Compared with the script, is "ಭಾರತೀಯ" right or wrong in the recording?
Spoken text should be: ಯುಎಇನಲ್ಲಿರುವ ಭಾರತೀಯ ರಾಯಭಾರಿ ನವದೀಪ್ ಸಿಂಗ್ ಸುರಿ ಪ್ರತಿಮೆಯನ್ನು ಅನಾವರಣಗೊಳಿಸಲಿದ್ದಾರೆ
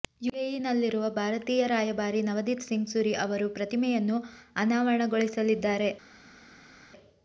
right